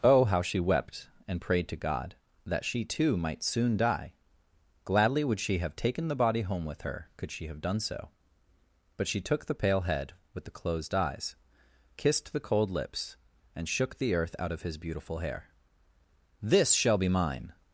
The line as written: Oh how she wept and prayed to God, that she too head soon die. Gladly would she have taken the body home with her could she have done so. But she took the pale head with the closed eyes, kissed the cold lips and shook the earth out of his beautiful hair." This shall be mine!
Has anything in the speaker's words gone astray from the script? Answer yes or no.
yes